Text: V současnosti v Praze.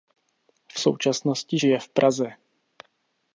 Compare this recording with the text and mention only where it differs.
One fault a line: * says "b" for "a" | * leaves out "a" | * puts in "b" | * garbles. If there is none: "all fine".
* puts in "žije"